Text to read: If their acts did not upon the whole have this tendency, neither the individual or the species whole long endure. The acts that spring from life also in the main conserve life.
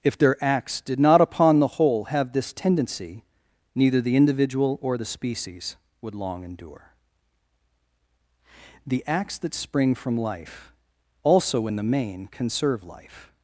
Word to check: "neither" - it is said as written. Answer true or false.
true